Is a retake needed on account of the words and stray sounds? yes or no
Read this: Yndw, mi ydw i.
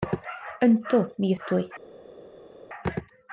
no